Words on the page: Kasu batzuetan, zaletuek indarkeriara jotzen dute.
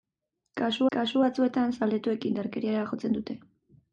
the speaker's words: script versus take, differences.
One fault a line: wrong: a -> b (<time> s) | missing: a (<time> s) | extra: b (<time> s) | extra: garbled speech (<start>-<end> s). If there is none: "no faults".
extra: kasu (1.0 s)